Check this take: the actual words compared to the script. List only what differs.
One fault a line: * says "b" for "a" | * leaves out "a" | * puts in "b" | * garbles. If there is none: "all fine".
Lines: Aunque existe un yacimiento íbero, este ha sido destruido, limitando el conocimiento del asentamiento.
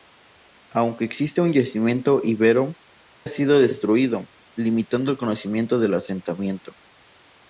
* leaves out "este"